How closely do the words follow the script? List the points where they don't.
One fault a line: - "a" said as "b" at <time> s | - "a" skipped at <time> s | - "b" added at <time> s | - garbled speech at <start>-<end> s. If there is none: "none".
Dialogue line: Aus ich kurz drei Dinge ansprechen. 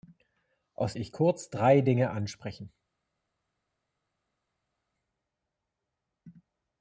none